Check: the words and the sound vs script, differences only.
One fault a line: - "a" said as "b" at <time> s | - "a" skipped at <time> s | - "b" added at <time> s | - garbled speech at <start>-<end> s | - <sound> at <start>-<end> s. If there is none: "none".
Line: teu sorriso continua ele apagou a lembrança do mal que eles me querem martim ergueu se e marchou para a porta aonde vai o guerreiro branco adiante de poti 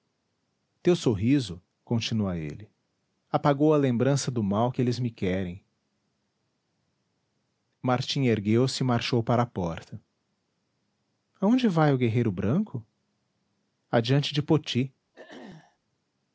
- throat clearing at 15.1-15.8 s